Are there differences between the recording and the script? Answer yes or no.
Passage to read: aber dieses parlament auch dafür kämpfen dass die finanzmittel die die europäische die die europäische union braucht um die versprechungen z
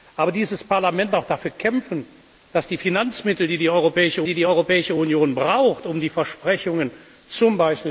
no